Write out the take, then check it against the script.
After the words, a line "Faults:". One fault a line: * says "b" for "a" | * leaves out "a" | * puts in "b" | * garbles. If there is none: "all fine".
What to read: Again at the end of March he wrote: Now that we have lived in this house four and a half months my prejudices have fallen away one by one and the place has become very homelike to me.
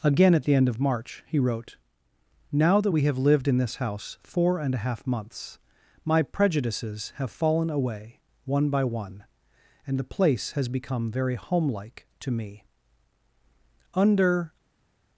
Again at the end of March he wrote: Now that we have lived in this house four and a half months my prejudices have fallen away one by one and the place has become very homelike to me. Under
Faults:
* puts in "Under"